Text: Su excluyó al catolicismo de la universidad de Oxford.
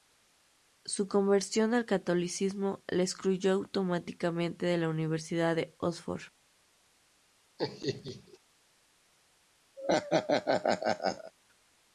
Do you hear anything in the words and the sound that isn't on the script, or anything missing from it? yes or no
yes